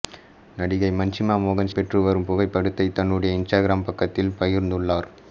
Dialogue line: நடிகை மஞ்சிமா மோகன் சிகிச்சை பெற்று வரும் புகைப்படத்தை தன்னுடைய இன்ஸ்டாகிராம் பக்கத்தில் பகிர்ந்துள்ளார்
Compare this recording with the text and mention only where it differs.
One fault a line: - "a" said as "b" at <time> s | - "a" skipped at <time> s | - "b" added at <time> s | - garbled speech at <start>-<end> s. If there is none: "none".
- "சிகிச்சை" skipped at 1.7 s